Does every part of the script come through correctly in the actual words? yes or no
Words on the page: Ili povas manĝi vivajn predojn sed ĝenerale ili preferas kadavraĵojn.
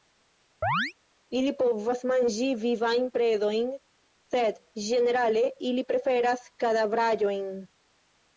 yes